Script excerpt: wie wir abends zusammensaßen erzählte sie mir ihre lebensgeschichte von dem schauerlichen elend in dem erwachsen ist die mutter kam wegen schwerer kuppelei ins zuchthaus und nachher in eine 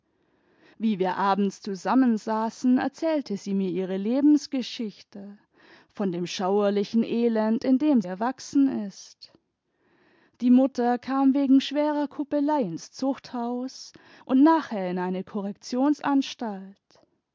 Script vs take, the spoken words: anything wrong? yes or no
no